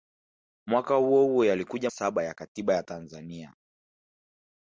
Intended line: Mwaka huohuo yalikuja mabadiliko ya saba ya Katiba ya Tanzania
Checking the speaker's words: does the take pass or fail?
fail